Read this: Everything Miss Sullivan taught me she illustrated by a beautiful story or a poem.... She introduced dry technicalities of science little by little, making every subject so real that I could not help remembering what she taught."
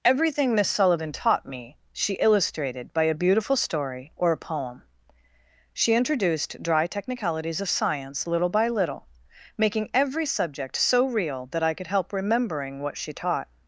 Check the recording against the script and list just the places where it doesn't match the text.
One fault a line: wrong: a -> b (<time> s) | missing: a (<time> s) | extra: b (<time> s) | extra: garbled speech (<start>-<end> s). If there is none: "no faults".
missing: not (11.9 s)